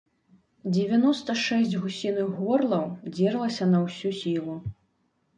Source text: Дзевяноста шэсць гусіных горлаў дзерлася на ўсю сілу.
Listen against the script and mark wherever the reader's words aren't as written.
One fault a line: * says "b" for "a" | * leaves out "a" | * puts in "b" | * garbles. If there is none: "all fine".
all fine